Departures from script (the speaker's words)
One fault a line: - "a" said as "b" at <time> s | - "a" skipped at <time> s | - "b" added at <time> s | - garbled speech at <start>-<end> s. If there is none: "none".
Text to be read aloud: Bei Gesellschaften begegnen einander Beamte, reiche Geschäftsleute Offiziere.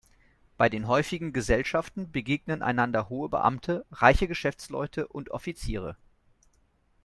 - "den häufigen" added at 0.7 s
- "hohe" added at 3.1 s
- "und" added at 5.1 s